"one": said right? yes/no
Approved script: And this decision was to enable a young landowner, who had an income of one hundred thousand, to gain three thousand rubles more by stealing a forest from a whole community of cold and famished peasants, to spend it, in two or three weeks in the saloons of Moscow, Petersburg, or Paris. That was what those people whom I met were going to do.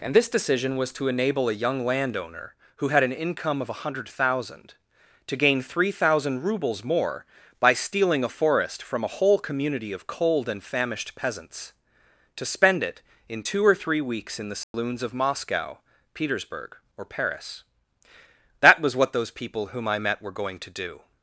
no